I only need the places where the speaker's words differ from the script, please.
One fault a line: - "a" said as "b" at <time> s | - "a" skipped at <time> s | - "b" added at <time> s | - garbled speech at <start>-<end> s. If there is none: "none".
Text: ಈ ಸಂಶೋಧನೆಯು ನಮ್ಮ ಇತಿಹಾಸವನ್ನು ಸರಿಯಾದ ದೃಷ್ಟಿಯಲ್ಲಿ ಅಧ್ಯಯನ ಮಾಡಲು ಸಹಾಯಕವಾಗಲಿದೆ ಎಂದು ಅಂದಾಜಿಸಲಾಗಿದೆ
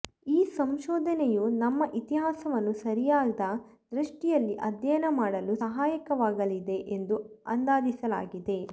none